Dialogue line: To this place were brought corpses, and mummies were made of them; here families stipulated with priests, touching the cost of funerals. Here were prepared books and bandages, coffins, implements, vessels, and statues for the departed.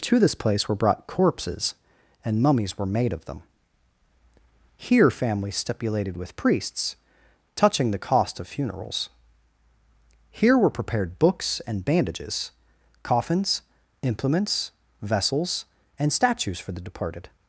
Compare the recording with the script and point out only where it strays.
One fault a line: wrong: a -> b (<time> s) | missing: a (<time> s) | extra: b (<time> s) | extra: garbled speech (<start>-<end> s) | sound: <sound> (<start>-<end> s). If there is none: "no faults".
no faults